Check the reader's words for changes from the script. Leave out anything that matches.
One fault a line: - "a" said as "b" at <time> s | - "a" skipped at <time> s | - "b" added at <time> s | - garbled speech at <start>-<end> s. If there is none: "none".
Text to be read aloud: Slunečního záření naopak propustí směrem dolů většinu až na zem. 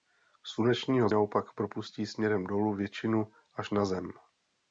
- "záření" skipped at 1.1 s